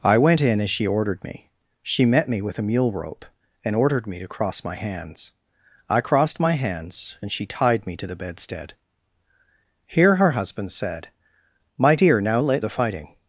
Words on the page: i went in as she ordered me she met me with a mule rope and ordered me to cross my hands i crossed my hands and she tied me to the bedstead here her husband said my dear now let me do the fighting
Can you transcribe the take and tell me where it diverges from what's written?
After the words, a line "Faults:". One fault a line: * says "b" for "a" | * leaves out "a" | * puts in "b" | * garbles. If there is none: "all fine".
i went in as she ordered me she met me with a mule rope and ordered me to cross my hands i crossed my hands and she tied me to the bedstead here her husband said my dear now let the fighting
Faults:
* leaves out "me do"